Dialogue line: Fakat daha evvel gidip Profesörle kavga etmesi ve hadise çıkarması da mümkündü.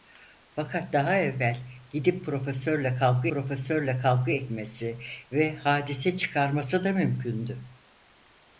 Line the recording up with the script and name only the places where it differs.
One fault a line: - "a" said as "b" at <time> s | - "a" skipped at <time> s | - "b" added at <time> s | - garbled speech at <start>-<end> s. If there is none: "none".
- "Profesörle kavga" added at 3.3 s